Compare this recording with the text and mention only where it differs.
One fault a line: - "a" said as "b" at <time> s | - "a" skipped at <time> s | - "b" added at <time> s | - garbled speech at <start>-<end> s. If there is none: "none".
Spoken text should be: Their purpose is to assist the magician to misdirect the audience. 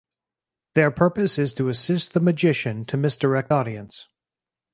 - "the" skipped at 3.5 s